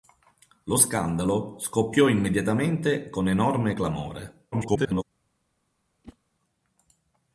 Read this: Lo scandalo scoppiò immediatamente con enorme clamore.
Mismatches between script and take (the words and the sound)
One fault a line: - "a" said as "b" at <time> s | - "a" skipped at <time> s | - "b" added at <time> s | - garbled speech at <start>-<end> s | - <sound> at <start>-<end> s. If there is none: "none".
- garbled speech at 4.5-5.0 s
- whoosh at 6.0-6.2 s